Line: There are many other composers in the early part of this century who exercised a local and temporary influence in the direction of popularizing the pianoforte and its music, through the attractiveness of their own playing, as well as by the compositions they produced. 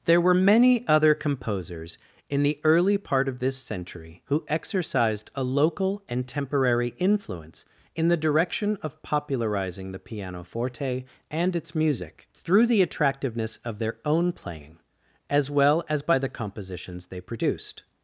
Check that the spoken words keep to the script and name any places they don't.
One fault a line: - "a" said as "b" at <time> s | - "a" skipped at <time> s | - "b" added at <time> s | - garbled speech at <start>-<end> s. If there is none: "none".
- "are" said as "were" at 0.2 s